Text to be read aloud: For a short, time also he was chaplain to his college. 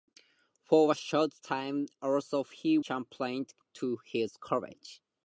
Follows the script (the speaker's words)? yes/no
no